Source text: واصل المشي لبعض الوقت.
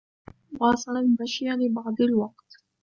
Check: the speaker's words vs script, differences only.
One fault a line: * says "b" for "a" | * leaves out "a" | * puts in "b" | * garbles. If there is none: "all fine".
all fine